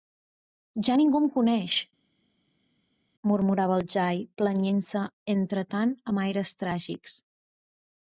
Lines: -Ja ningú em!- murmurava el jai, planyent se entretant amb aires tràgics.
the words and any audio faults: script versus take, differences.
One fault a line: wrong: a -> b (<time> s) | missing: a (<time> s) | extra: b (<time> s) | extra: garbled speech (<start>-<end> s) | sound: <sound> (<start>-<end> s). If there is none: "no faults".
extra: coneix (1.3 s)